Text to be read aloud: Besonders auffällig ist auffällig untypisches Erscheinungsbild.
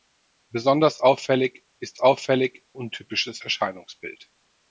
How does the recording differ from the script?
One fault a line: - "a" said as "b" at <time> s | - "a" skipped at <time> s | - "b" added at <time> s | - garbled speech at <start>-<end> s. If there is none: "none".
none